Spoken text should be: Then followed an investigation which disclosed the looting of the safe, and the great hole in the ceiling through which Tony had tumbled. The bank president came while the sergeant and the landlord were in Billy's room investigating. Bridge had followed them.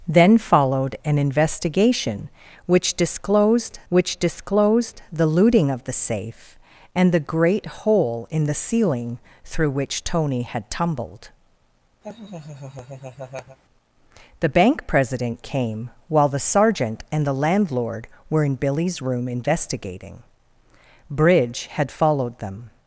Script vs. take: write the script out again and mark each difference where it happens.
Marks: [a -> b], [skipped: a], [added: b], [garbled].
Then followed an investigation which disclosed [added: which disclosed] the looting of the safe, and the great hole in the ceiling through which Tony had tumbled. The bank president came while the sergeant and the landlord were in Billy's room investigating. Bridge had followed them.